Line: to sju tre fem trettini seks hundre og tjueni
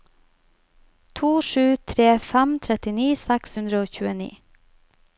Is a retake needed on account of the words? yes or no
no